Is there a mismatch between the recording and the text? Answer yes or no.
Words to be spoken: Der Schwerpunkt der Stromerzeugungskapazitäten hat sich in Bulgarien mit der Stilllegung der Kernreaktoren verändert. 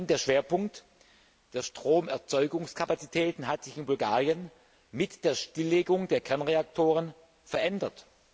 no